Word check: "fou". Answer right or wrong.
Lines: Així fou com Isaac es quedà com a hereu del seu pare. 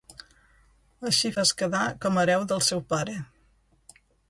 wrong